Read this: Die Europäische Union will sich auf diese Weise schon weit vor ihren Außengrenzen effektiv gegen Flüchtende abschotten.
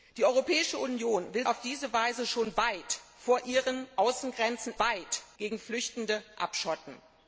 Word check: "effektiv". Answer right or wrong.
wrong